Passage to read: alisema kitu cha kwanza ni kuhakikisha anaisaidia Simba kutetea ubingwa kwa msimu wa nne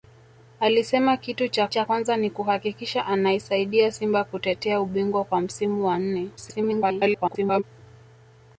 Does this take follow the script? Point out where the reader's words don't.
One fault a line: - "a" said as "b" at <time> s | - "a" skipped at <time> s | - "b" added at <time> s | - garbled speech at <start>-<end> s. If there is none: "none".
- "cha" added at 1.7 s
- garbled speech at 6.4-7.6 s